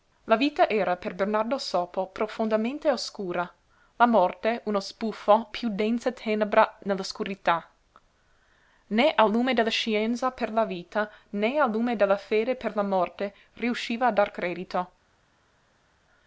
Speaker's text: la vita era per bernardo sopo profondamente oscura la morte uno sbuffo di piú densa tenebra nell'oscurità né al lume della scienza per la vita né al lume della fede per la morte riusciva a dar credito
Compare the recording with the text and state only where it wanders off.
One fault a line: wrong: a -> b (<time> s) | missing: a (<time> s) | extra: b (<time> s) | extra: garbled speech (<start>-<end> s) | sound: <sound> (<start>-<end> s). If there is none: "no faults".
missing: di (5.5 s)